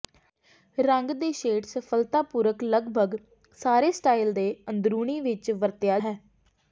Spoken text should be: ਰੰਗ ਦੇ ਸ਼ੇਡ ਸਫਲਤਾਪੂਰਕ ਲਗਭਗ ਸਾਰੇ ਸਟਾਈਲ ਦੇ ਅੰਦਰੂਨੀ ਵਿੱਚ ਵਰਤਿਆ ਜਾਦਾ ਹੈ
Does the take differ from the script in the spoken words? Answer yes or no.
yes